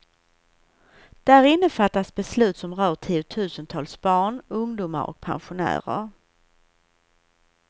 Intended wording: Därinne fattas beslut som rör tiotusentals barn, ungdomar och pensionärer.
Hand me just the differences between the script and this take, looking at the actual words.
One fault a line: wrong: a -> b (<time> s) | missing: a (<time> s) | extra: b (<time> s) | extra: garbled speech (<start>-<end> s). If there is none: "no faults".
no faults